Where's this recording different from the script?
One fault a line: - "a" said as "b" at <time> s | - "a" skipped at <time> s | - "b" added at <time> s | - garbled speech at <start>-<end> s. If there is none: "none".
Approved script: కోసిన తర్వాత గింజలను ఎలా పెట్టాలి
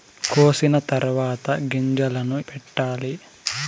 - "ఎలా" skipped at 2.4 s